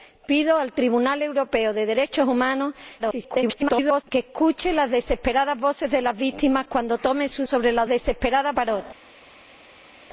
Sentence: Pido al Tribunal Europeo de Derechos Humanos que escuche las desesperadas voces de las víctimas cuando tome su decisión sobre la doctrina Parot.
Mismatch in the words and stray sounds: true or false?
true